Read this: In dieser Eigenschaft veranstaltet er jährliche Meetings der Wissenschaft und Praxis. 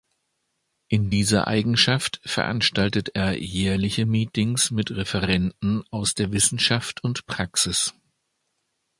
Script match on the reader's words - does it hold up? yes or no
no